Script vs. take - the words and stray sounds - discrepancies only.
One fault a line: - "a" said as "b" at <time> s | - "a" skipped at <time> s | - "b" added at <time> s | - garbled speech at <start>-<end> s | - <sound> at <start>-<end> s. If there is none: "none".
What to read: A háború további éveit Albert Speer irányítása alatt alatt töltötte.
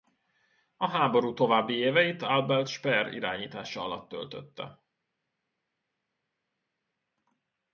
- "alatt" skipped at 4.1 s